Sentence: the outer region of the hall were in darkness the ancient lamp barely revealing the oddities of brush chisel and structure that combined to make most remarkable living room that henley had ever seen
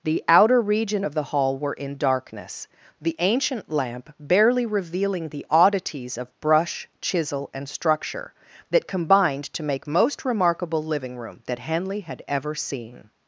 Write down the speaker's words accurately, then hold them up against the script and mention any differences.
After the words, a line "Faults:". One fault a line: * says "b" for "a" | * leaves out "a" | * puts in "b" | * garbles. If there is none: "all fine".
the outer region of the hall were in darkness the ancient lamp barely revealing the oddities of brush chisel and structure that combined to make most remarkable living room that henley had ever seen
Faults:
all fine